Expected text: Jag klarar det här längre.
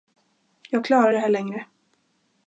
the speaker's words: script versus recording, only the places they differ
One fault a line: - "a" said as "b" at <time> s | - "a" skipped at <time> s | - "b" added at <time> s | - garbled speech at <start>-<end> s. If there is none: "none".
none